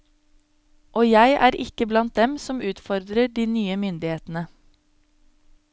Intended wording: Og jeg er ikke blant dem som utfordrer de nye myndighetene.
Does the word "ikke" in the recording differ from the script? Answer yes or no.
no